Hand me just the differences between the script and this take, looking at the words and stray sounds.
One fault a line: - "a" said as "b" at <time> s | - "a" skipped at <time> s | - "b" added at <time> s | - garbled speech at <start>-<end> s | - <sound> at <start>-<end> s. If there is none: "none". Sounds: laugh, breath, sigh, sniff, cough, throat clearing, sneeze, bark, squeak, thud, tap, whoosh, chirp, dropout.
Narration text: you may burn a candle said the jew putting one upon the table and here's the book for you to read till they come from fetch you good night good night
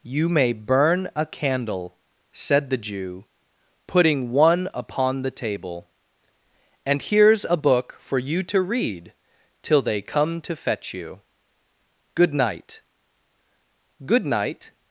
- "the" said as "a" at 7.4 s
- "from" said as "to" at 10.4 s